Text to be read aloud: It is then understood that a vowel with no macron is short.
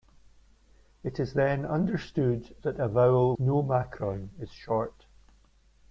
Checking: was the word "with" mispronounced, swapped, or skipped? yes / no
yes